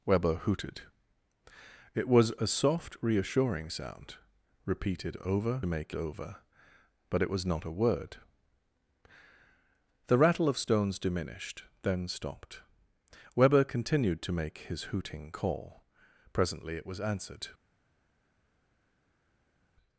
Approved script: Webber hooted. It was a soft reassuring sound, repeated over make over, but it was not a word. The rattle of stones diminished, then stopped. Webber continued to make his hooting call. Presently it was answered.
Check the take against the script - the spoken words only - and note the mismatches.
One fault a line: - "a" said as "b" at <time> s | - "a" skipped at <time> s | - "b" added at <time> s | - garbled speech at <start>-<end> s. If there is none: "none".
none